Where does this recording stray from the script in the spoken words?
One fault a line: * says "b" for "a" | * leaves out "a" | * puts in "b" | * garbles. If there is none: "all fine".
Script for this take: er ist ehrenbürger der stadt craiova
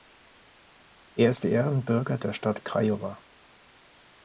all fine